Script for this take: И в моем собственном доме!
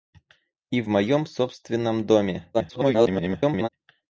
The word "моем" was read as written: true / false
true